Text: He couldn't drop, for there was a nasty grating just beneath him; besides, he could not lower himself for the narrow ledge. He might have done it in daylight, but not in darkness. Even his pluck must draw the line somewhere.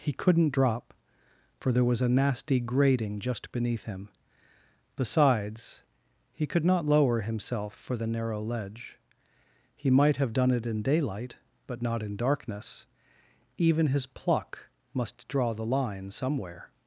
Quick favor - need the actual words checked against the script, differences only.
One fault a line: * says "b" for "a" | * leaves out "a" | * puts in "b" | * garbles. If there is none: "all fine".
all fine